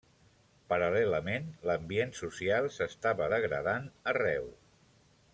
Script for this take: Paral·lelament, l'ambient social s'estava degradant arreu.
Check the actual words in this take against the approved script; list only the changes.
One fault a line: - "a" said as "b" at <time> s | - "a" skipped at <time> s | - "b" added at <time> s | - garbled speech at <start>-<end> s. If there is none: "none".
none